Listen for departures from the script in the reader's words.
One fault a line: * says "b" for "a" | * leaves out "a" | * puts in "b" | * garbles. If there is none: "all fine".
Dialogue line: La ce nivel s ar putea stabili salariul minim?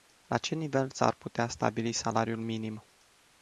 all fine